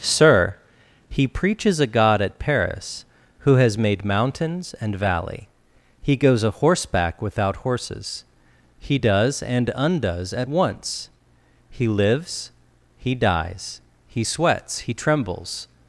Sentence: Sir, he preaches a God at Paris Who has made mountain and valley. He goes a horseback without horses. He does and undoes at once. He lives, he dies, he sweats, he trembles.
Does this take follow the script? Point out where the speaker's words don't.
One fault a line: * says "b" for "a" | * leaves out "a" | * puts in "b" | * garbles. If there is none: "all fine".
* says "mountains" for "mountain"